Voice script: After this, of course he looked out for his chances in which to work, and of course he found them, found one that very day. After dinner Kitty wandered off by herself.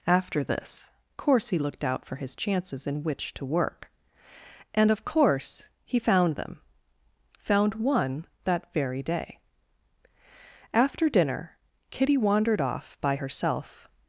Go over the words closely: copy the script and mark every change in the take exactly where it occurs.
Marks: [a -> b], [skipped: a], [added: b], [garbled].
After this, [skipped: of] course he looked out for his chances in which to work, and of course he found them, found one that very day. After dinner Kitty wandered off by herself.